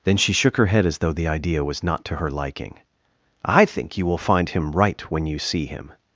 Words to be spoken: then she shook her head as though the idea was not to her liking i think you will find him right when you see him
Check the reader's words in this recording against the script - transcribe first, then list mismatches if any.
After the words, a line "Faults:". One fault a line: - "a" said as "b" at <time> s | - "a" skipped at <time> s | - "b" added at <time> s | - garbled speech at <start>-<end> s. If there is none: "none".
then she shook her head as though the idea was not to her liking i think you will find him right when you see him
Faults:
none